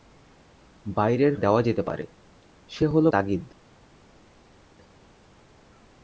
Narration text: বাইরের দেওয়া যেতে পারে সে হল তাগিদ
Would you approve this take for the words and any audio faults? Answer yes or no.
yes